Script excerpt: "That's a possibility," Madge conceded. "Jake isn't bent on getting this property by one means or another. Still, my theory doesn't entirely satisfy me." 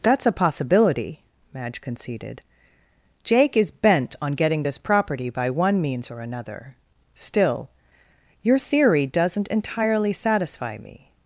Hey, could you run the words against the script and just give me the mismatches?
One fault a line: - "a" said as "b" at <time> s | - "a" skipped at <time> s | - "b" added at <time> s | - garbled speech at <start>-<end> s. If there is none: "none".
- "isn't" said as "is" at 3.5 s
- "my" said as "your" at 8.4 s